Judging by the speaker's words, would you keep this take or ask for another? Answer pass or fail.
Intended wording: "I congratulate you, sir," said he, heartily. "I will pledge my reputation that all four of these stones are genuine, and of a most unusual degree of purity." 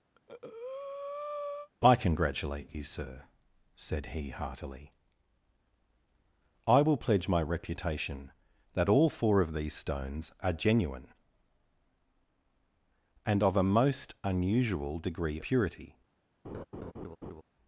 fail